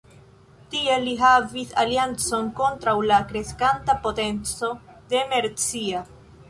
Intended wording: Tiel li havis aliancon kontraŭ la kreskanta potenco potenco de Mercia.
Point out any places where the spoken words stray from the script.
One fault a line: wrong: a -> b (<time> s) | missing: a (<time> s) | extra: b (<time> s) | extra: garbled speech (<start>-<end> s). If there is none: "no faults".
missing: potenco (4.8 s)